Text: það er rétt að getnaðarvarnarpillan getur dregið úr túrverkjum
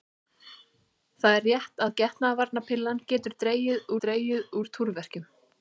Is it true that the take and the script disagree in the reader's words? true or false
true